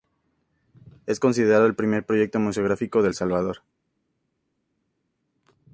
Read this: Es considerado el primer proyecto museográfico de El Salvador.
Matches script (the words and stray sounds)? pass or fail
pass